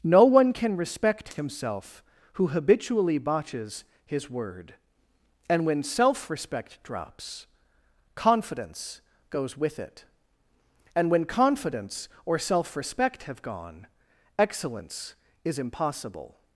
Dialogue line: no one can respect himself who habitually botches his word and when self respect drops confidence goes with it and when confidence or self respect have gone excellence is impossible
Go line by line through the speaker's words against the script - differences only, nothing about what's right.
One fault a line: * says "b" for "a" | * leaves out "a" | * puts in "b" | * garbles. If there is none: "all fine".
all fine